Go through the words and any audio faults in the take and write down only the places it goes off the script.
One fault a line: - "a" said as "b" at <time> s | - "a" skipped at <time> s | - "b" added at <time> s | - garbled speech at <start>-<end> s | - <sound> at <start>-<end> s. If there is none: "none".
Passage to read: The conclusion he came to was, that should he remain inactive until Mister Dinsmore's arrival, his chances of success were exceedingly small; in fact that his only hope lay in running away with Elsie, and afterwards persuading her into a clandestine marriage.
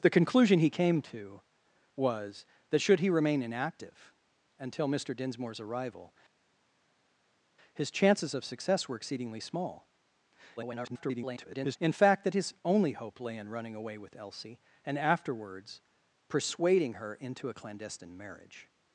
- garbled speech at 10.6-11.8 s